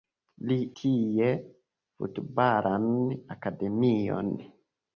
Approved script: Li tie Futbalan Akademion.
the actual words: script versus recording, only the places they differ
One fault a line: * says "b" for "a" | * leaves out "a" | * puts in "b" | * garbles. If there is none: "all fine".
all fine